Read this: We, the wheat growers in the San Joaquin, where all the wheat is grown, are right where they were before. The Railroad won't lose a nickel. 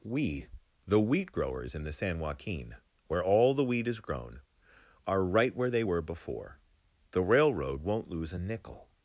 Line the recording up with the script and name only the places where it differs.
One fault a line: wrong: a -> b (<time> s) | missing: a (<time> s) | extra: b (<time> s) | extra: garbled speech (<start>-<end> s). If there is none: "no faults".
no faults